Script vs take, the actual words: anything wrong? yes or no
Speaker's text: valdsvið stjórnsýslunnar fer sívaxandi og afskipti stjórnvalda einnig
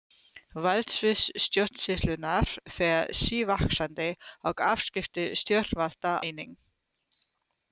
no